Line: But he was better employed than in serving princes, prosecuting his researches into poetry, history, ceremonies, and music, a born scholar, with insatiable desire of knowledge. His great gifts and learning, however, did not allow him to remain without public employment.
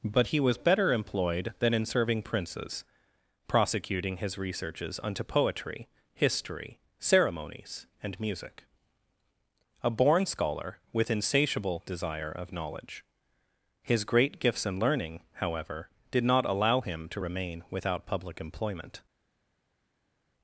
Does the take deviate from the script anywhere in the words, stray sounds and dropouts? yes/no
yes